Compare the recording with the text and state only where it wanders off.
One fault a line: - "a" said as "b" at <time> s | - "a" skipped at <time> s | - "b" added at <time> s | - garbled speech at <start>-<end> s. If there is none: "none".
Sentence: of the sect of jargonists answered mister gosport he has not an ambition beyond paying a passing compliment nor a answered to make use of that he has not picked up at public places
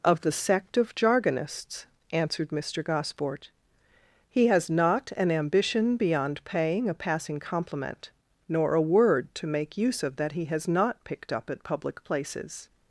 - "answered" said as "word" at 8.8 s